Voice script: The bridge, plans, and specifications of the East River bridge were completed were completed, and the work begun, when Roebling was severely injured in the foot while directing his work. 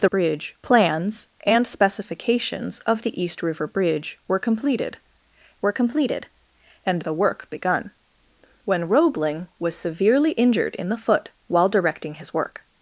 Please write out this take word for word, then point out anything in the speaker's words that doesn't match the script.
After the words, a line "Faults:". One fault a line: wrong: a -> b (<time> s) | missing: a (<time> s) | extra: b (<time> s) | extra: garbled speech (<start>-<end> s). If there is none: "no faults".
The bridge, plans, and specifications of the East River bridge were completed were completed, and the work begun, when Roebling was severely injured in the foot while directing his work.
Faults:
no faults